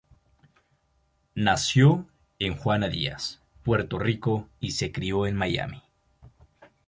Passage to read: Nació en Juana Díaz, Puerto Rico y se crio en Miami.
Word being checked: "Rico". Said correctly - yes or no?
yes